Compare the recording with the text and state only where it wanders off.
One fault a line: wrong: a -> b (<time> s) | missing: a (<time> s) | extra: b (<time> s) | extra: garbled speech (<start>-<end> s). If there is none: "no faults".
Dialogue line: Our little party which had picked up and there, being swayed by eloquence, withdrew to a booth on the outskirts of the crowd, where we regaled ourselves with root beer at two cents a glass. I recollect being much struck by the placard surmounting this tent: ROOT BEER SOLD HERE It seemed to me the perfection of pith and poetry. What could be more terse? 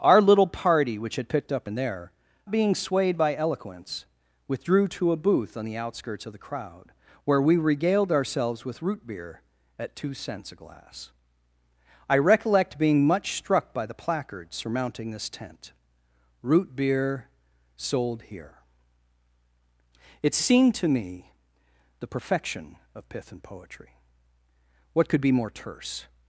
no faults